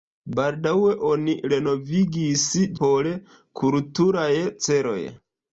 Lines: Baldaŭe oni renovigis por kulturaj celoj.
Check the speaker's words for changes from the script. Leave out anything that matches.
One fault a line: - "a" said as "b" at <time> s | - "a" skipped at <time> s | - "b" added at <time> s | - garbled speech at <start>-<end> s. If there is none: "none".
none